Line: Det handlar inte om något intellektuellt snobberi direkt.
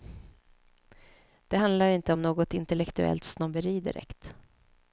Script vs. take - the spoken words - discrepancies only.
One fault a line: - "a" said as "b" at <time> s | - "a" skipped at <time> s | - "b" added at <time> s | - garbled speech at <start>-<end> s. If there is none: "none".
none